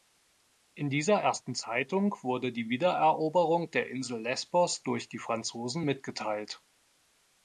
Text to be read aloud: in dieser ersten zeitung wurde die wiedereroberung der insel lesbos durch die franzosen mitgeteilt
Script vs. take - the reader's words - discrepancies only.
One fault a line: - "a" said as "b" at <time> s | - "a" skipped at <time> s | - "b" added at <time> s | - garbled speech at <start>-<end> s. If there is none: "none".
none